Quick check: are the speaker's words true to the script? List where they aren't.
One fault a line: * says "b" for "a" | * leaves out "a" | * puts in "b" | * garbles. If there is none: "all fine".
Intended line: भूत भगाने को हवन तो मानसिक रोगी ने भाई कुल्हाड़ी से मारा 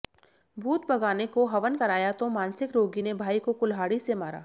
* puts in "कराया"
* puts in "को"